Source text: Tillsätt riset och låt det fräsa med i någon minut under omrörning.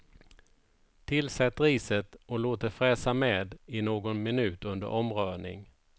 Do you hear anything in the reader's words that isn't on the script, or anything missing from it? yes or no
no